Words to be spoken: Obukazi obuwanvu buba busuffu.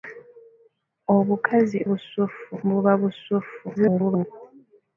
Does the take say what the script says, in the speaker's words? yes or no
no